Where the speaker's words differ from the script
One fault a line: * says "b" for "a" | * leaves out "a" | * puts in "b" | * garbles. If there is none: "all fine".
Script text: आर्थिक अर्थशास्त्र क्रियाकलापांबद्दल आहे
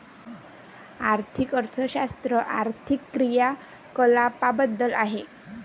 * puts in "आर्थिक"